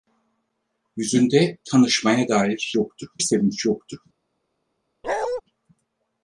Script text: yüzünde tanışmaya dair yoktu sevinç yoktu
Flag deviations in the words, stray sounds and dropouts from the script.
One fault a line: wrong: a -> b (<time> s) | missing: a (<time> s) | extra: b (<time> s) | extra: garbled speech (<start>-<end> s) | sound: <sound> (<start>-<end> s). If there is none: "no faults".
sound: bark (5.0-5.4 s)